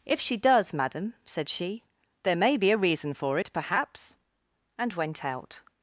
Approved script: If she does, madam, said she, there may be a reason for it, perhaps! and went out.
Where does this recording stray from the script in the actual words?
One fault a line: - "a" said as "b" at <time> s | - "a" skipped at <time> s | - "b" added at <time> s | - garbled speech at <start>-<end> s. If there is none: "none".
none